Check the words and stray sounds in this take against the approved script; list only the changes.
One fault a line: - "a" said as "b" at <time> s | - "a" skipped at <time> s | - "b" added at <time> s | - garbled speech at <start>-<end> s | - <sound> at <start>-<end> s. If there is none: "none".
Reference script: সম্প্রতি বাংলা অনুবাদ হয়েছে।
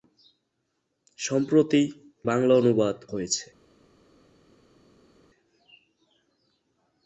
none